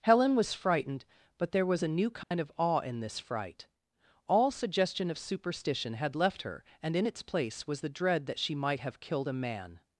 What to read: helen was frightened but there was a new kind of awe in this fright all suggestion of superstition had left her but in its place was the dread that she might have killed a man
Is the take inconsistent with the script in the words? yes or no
yes